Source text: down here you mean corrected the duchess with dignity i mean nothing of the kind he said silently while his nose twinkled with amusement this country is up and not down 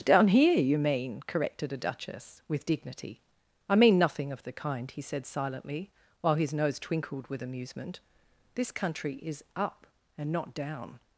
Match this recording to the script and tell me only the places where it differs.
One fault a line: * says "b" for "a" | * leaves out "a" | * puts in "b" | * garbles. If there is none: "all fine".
* says "a" for "the"